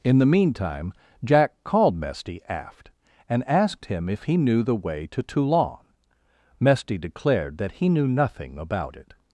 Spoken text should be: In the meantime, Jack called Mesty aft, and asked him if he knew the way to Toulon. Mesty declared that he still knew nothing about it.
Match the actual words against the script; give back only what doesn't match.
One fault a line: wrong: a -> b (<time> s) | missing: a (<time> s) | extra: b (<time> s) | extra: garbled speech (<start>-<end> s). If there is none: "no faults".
missing: still (7.9 s)